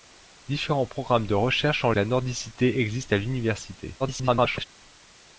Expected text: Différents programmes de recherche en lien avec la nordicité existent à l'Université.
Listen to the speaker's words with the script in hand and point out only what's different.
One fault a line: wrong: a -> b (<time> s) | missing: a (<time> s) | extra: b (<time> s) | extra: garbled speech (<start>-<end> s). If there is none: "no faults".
missing: lien avec (1.9 s)
extra: garbled speech (4.0-4.7 s)